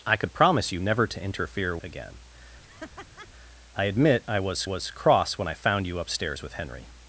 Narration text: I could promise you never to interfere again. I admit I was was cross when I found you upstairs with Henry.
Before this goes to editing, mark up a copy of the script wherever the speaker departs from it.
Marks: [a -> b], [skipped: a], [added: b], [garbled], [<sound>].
I could promise you never to interfere again. [laugh] I admit I was was cross when I found you upstairs with Henry.